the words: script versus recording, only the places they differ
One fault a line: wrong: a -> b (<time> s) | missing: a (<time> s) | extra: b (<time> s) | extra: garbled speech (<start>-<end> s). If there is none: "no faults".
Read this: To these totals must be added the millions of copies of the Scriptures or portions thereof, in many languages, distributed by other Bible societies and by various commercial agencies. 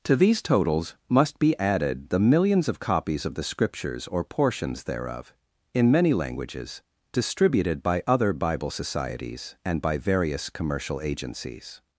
no faults